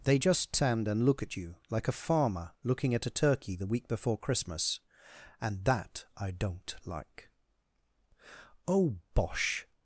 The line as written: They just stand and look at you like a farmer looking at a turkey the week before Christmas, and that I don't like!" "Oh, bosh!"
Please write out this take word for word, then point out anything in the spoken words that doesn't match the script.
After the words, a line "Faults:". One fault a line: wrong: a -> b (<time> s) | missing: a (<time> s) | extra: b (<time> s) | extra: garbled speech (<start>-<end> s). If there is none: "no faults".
They just stand and look at you like a farmer looking at a turkey the week before Christmas, and that I don't like!" "Oh, bosh!"
Faults:
no faults